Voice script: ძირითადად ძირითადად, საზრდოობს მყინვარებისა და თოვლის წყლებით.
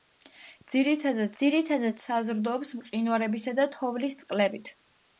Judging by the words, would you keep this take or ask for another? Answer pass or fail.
pass